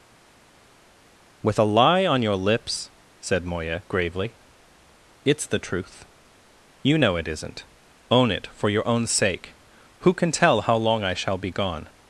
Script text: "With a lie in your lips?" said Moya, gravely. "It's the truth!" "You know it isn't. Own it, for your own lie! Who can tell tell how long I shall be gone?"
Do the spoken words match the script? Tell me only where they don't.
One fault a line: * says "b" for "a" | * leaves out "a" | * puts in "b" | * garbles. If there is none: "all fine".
* says "on" for "in"
* says "sake" for "lie"
* leaves out "tell"